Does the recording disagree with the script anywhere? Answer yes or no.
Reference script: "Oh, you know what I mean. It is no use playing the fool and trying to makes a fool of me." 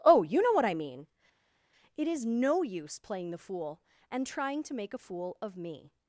yes